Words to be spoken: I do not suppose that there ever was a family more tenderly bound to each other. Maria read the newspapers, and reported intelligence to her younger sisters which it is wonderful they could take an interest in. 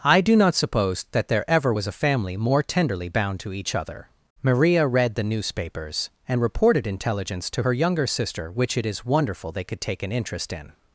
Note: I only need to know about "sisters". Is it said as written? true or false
false